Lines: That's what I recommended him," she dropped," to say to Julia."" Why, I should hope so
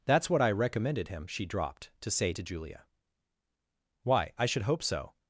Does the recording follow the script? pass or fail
pass